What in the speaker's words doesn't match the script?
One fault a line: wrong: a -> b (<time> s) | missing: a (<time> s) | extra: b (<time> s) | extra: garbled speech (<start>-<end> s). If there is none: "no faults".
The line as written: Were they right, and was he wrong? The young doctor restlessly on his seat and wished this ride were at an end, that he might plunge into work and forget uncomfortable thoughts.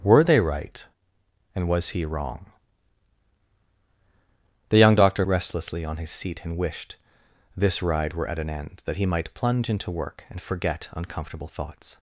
no faults